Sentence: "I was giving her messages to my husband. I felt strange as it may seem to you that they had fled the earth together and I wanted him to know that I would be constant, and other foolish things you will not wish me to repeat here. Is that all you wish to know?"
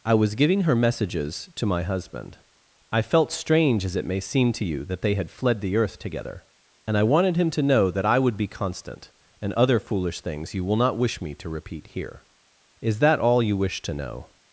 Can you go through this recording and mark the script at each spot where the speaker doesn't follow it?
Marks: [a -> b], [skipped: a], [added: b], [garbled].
"I was giving her messages to my husband. I felt strange as it may seem to you that they had fled the earth together and I wanted him to know that I would be constant, and other foolish things you will not wish me to repeat here. Is that all you wish to know?"